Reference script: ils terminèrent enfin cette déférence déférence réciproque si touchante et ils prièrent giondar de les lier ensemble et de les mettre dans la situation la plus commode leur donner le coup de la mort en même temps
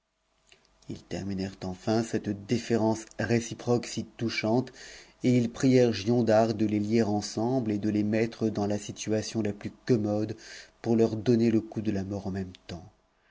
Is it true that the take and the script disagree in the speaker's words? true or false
true